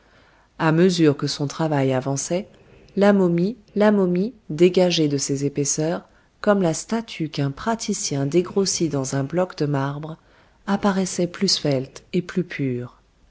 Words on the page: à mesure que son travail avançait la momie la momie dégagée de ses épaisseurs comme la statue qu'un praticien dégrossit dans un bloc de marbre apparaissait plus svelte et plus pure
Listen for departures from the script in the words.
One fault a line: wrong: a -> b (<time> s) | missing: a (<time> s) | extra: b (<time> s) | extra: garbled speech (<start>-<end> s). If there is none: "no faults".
no faults